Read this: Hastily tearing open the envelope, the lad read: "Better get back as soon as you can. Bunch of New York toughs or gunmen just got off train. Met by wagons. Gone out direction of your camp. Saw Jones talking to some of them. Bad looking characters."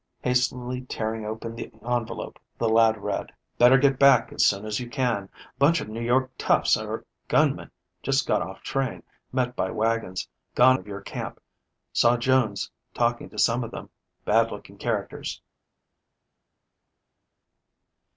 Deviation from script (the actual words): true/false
true